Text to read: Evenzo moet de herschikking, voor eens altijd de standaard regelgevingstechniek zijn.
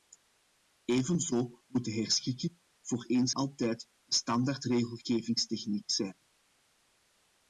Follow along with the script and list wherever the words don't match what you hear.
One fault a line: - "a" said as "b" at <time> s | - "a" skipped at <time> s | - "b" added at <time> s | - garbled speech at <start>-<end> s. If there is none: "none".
none